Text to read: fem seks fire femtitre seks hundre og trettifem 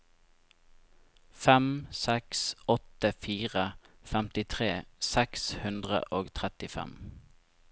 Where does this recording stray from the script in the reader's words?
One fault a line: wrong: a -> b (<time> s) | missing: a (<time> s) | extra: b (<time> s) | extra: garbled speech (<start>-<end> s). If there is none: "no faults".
extra: åtte (2.8 s)